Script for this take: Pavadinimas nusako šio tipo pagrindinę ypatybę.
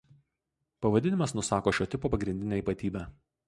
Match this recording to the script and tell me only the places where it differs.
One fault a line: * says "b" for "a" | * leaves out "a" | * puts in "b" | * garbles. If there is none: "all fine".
all fine